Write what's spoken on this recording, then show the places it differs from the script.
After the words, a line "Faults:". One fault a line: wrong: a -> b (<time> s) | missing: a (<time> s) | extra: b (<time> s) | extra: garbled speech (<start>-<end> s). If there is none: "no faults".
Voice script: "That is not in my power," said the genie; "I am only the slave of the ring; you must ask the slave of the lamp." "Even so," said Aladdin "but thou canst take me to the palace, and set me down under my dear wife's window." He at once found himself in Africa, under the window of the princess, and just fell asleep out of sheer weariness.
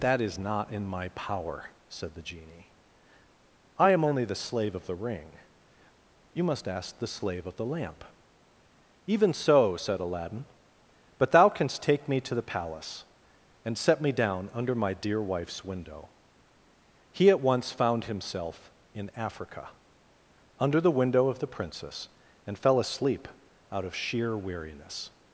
"That is not in my power," said the genie; "I am only the slave of the ring; you must ask the slave of the lamp." "Even so," said Aladdin "but thou canst take me to the palace, and set me down under my dear wife's window." He at once found himself in Africa, under the window of the princess, and fell asleep out of sheer weariness.
Faults:
missing: just (22.6 s)